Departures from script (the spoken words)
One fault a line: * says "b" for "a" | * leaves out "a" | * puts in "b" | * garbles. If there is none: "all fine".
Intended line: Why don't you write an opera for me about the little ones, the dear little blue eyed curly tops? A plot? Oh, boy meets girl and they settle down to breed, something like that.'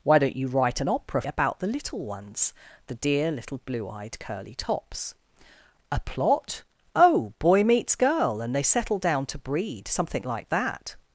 * leaves out "for me"